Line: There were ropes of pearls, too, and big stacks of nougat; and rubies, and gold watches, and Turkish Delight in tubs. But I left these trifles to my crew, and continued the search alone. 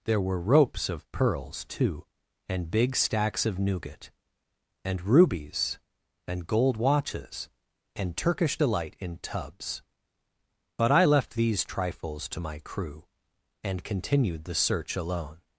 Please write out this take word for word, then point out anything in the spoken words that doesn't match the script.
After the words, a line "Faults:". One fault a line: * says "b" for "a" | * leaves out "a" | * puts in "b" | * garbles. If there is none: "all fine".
There were ropes of pearls, too, and big stacks of nougat; and rubies, and gold watches, and Turkish Delight in tubs. But I left these trifles to my crew, and continued the search alone.
Faults:
all fine